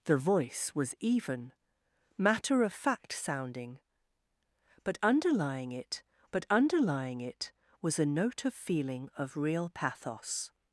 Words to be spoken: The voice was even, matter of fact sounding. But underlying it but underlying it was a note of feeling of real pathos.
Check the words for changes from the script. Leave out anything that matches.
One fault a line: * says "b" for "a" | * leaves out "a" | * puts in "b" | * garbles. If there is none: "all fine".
all fine